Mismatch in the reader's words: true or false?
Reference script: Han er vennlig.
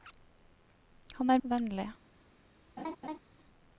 false